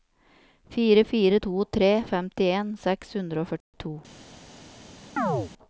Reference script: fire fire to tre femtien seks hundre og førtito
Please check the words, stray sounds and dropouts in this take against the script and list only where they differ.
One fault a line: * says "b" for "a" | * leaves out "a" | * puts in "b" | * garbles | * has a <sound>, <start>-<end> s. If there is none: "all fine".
* has a dropout, 3.6-3.7 s
* has a chirp, 5.2-5.5 s